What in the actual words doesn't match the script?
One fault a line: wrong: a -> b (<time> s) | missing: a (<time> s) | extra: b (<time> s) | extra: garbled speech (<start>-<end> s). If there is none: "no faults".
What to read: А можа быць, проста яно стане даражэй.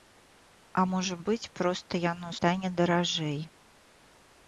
no faults